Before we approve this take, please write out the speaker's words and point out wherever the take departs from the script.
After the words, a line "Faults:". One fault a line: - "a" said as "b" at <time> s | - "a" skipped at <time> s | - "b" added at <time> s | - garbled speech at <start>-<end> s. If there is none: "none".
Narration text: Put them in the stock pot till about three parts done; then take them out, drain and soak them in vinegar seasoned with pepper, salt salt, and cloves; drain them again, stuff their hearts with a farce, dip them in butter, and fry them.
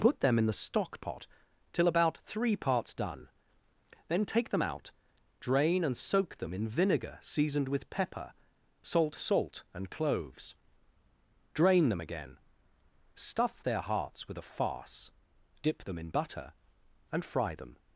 Put them in the stock pot till about three parts done; then take them out, drain and soak them in vinegar seasoned with pepper, salt salt, and cloves; drain them again, stuff their hearts with a farce, dip them in butter, and fry them.
Faults:
none